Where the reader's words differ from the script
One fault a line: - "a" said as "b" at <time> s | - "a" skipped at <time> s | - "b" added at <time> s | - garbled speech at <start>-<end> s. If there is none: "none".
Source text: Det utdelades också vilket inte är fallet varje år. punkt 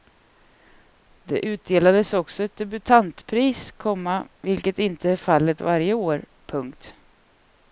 - "ett debutantpris komma" added at 2.4 s